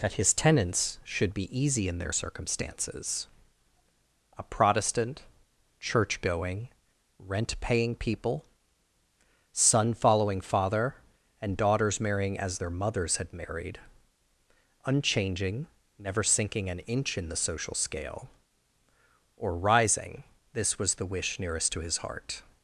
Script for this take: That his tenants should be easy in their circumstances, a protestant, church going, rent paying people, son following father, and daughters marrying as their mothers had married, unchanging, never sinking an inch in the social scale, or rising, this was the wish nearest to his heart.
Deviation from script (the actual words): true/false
false